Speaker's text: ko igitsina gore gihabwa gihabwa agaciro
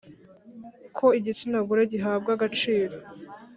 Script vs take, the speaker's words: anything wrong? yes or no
yes